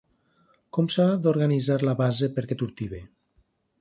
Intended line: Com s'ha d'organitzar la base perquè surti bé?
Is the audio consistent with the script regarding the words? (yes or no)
yes